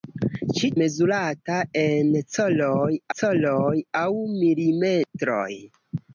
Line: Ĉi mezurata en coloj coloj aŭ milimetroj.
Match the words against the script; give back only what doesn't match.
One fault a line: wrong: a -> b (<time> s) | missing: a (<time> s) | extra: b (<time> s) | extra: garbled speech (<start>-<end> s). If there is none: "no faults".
no faults